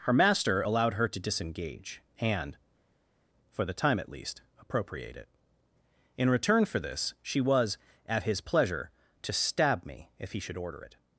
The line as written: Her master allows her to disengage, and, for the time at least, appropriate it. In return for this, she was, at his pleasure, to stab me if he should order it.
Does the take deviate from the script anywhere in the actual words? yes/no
yes